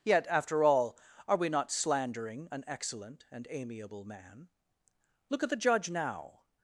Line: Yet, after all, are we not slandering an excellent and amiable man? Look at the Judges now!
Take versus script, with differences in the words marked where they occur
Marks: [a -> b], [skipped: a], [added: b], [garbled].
Yet, after all, are we not slandering an excellent and amiable man? Look at the [Judges -> Judge] now!